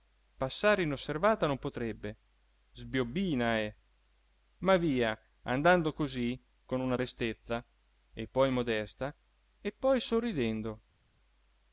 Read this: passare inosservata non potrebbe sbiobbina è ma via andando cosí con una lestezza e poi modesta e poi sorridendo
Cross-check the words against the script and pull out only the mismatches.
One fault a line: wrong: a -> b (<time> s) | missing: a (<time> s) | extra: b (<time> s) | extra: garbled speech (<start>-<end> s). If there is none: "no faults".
no faults